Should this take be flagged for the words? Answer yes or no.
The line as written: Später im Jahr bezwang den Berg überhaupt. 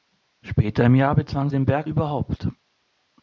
no